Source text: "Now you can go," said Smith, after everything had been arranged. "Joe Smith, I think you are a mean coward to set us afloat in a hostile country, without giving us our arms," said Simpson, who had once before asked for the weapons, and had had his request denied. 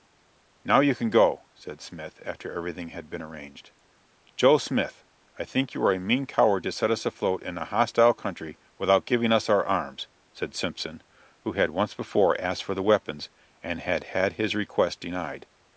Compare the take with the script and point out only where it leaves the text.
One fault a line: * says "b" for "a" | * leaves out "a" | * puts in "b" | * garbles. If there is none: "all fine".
all fine